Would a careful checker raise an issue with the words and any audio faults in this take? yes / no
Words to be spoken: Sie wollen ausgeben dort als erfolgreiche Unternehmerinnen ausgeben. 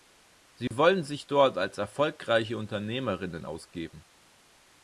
yes